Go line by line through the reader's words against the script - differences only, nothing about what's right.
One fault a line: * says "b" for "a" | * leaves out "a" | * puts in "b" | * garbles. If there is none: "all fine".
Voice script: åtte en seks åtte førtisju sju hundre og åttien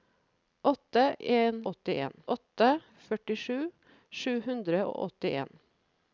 * says "åttien" for "seks"